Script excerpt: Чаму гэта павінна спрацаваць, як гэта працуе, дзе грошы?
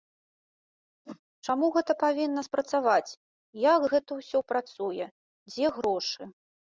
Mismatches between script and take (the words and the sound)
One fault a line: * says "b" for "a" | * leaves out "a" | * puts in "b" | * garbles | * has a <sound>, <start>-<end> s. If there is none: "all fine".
* has a whoosh, 1.0-1.2 s
* puts in "ўсё"